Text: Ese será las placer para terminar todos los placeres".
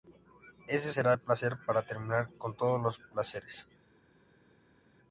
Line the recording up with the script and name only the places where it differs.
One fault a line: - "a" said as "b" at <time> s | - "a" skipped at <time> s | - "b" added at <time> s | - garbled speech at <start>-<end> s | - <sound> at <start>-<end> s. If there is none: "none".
- "las" said as "el" at 1.1 s
- "con" added at 2.4 s